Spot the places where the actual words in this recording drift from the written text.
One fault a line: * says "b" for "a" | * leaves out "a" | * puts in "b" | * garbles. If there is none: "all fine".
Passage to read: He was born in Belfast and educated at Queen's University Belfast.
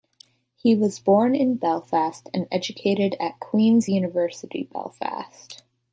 all fine